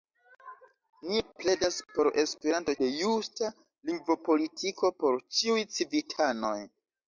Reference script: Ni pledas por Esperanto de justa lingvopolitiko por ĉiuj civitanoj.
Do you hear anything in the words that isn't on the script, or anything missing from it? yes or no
no